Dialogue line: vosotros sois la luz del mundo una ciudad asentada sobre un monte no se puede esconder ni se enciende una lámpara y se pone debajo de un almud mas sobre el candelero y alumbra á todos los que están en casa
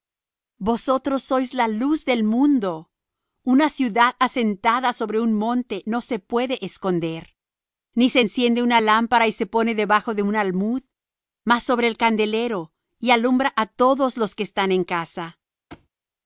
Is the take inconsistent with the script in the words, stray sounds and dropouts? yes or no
yes